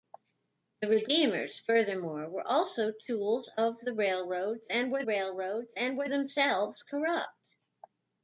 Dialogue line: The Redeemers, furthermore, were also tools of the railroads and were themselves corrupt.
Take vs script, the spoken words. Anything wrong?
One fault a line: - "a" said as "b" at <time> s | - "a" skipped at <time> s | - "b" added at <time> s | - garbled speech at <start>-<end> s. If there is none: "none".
- "railroads and were" added at 5.0 s